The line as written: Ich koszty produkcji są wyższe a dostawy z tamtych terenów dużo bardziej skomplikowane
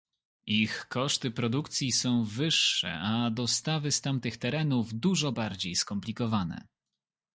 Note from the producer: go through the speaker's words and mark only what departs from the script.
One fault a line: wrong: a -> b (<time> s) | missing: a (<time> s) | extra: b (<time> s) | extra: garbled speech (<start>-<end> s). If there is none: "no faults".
no faults